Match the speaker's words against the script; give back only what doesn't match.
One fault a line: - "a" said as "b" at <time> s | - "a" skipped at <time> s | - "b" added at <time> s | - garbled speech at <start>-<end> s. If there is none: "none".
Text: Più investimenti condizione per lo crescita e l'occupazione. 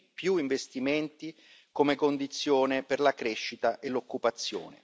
- "come" added at 1.7 s
- "lo" said as "la" at 3.0 s